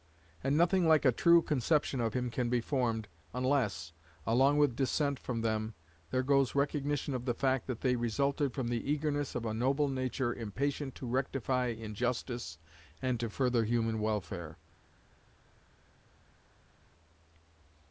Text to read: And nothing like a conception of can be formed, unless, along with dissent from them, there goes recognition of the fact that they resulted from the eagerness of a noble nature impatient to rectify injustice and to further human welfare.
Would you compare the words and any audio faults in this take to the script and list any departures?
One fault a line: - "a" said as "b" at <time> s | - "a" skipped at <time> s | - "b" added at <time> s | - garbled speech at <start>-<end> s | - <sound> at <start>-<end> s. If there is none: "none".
- "true" added at 1.1 s
- "him" added at 2.1 s